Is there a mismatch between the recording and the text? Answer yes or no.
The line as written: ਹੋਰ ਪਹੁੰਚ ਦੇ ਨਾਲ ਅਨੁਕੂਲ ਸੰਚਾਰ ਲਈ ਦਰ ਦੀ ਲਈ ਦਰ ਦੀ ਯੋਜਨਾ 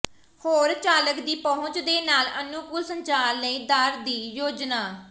yes